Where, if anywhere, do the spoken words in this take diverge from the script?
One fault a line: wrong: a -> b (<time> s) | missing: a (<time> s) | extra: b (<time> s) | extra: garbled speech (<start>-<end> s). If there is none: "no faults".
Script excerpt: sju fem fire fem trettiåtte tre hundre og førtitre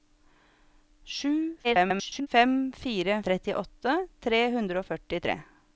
extra: garbled speech (1.6-2.3 s)
missing: fem (3.2 s)